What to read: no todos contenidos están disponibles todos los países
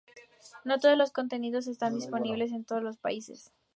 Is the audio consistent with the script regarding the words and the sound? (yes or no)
no